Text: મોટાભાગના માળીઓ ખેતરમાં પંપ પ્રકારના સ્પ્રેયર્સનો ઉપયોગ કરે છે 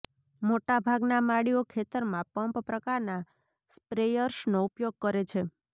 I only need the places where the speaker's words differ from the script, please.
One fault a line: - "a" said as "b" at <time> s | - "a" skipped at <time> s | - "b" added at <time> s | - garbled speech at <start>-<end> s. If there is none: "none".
none